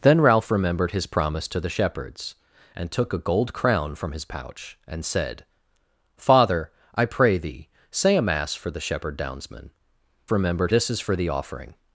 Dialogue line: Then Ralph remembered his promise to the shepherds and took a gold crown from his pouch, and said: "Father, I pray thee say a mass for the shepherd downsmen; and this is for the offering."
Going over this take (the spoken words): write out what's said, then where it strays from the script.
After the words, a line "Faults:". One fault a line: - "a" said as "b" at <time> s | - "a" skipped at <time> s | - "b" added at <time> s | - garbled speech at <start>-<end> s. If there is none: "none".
Then Ralph remembered his promise to the shepherds and took a gold crown from his pouch, and said: "Father, I pray thee say a mass for the shepherd downsmen; remembered this is for the offering."
Faults:
- "and" said as "remembered" at 10.3 s